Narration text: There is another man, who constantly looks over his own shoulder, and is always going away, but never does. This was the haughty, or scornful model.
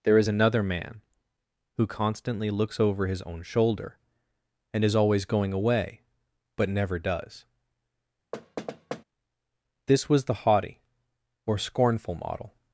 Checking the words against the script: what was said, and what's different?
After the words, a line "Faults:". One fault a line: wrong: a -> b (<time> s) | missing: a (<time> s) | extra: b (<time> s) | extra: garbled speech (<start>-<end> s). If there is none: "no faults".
There is another man, who constantly looks over his own shoulder, and is always going away, but never does. This was the haughty, or scornful model.
Faults:
no faults